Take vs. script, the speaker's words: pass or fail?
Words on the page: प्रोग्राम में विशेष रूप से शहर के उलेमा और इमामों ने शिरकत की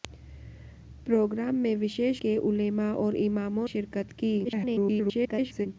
fail